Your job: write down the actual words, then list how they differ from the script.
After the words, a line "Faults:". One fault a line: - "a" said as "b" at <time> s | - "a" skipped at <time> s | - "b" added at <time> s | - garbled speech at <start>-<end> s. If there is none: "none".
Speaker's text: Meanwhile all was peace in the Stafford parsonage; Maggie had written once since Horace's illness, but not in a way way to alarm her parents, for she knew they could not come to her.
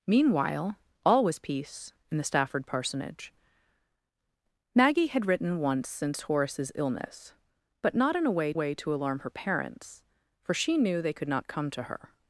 Meanwhile all was peace in the Stafford parsonage; Maggie had written once since Horace's illness, but not in a way way to alarm her parents, for she knew they could not come to her.
Faults:
none